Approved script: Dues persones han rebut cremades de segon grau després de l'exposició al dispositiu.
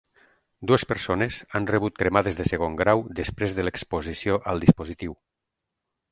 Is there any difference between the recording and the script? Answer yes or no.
no